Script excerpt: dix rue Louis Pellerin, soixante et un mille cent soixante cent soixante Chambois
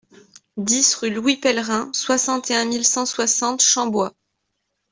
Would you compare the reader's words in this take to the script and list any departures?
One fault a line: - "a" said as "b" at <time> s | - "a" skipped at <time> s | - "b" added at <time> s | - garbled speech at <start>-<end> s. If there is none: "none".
- "cent soixante" skipped at 3.6 s